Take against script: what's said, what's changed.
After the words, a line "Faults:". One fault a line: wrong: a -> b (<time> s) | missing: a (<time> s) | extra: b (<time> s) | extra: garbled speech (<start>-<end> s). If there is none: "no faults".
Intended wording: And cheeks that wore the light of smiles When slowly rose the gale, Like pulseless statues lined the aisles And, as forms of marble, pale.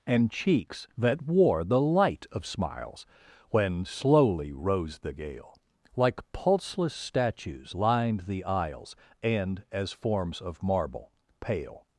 And cheeks that wore the light of smiles When slowly rose the gale, Like pulseless statues lined the aisles And, as forms of marble, pale.
Faults:
no faults